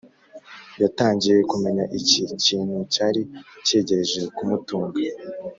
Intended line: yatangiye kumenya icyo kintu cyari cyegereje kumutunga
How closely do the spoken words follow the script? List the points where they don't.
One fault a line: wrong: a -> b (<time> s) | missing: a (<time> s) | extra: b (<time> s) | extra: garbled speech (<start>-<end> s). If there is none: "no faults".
wrong: icyo -> iki (2.0 s)